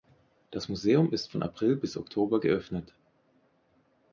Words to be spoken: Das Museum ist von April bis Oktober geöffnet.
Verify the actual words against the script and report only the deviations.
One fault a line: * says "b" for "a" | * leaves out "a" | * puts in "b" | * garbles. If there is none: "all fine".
all fine